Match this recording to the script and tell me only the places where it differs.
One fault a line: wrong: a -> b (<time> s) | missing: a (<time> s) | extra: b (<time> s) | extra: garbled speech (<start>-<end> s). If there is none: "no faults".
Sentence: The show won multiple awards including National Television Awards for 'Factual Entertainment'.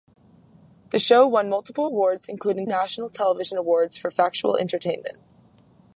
no faults